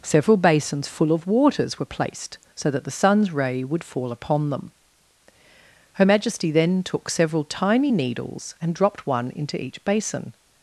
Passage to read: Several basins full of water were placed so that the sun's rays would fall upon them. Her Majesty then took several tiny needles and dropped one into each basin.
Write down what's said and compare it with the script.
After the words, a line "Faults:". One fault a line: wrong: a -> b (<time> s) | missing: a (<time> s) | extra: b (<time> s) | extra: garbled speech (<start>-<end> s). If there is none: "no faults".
Several basins full of waters were placed so that the sun's ray would fall upon them. Her Majesty then took several tiny needles and dropped one into each basin.
Faults:
wrong: water -> waters (1.3 s)
wrong: rays -> ray (3.3 s)